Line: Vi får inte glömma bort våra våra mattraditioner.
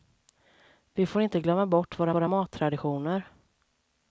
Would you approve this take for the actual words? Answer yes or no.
yes